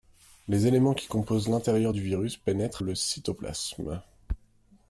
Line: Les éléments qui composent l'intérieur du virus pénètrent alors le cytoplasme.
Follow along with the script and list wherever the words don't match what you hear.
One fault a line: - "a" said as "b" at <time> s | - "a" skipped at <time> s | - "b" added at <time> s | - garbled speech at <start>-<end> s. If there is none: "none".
- "alors" skipped at 2.8 s